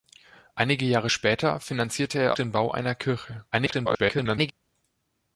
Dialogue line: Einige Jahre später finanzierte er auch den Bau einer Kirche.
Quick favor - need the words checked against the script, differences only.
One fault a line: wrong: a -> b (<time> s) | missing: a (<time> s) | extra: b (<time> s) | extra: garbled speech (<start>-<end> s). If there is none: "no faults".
missing: auch (2.4 s)
extra: garbled speech (3.5-4.5 s)